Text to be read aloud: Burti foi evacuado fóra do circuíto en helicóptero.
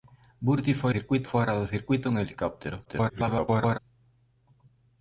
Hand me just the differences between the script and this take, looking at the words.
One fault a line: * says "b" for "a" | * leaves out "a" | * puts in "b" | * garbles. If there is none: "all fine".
* says "circuíto" for "evacuado"
* garbles